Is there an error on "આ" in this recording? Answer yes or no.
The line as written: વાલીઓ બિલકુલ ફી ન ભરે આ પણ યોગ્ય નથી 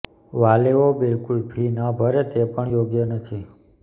yes